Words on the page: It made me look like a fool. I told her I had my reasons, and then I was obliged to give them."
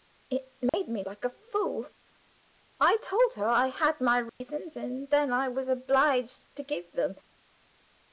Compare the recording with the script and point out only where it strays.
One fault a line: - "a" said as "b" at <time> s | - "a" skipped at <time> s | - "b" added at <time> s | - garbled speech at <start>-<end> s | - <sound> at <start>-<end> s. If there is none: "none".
- dropout at 0.7-0.7 s
- "look" skipped at 1.0 s
- dropout at 4.3-4.4 s